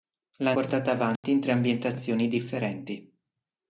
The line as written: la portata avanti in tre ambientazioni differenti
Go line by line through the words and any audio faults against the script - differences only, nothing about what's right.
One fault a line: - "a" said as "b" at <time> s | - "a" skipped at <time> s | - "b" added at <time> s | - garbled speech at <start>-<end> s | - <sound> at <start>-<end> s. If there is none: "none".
- dropout at 1.2-1.2 s